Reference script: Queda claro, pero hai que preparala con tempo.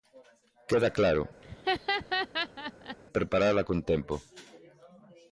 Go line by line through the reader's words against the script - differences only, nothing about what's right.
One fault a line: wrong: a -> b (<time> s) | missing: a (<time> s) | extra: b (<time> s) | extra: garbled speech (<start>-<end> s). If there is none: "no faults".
missing: pero hai que (1.2 s)